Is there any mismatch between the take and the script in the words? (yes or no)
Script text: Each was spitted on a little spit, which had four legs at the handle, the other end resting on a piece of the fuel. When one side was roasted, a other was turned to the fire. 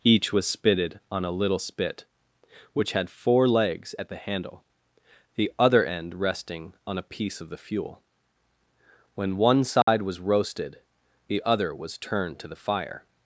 yes